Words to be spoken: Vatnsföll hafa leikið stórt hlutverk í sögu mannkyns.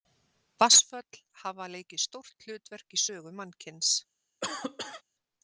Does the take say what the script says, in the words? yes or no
yes